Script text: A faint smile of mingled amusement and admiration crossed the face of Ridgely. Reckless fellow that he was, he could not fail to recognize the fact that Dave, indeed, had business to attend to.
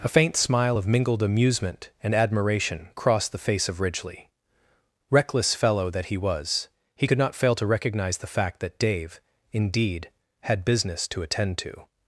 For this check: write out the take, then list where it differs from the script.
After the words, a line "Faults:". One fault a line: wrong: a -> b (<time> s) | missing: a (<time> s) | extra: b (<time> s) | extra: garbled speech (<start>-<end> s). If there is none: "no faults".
A faint smile of mingled amusement and admiration crossed the face of Ridgely. Reckless fellow that he was, he could not fail to recognize the fact that Dave, indeed, had business to attend to.
Faults:
no faults